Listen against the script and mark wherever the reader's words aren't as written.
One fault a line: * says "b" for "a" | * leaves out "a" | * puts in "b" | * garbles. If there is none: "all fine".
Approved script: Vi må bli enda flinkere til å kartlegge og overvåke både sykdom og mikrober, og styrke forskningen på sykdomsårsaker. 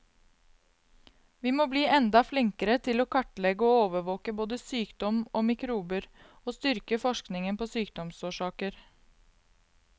all fine